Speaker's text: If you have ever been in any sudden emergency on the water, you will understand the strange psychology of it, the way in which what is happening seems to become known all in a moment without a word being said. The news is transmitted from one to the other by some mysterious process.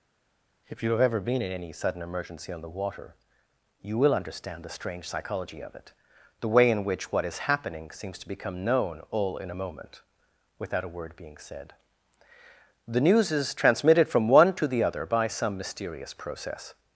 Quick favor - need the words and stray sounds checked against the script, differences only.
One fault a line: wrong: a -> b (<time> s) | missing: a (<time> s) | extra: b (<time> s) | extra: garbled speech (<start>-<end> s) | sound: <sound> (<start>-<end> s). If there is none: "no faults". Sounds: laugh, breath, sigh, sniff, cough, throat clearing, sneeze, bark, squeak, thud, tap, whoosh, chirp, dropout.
no faults